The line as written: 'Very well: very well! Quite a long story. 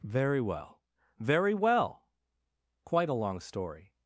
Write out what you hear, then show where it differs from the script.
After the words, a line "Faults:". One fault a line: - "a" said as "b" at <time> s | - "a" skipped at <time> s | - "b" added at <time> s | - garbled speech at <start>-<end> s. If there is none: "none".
'Very well: very well! Quite a long story.
Faults:
none